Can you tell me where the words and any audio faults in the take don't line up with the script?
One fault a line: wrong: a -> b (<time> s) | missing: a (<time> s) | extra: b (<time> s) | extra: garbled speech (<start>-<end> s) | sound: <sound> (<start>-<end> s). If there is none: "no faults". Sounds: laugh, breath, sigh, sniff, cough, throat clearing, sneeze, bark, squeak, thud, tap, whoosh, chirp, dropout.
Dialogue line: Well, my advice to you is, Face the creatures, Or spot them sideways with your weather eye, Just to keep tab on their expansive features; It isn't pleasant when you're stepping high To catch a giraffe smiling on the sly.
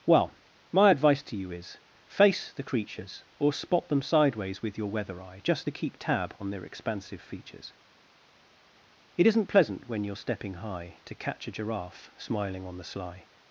no faults